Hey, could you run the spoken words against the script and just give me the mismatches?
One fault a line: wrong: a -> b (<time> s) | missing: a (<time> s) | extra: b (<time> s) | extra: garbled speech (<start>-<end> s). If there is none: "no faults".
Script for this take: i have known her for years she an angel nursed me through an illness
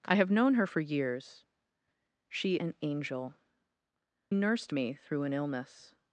no faults